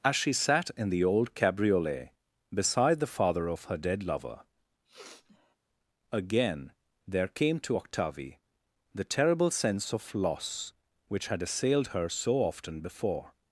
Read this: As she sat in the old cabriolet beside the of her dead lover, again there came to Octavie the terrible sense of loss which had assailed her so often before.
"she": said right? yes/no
yes